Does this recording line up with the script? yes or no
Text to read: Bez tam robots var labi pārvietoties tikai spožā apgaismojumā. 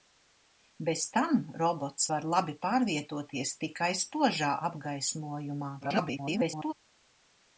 no